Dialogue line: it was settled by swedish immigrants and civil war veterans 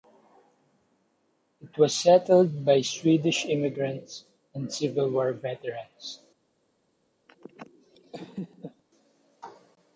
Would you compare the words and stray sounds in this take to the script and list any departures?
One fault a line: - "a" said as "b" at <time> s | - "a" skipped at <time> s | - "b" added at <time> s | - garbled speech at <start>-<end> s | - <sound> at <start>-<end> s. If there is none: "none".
- laugh at 7.3-8.8 s